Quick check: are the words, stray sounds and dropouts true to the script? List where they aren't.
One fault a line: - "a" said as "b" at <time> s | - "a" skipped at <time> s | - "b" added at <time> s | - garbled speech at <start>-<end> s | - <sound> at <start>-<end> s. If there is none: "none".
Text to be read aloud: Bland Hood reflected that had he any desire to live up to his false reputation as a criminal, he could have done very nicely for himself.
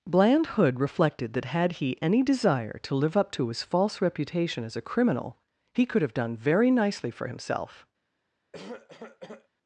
- cough at 8.5-9.5 s